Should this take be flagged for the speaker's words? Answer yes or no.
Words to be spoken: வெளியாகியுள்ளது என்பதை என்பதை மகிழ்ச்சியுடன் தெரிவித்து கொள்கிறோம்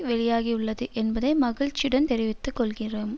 yes